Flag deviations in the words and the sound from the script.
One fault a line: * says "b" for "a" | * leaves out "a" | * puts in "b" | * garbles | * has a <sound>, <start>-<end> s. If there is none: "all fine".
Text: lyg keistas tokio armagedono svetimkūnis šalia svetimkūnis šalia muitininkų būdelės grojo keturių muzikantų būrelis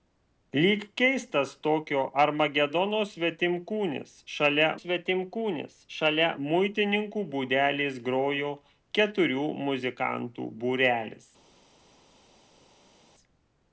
all fine